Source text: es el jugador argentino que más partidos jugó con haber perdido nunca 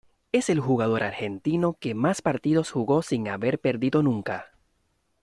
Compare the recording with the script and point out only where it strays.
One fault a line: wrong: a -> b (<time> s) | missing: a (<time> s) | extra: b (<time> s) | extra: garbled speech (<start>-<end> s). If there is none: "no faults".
wrong: con -> sin (3.0 s)